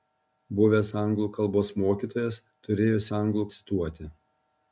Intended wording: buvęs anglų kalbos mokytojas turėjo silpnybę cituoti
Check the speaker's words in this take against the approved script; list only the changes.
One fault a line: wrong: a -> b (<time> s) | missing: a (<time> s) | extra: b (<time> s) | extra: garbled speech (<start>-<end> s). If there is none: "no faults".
wrong: silpnybę -> anglų (3.2 s)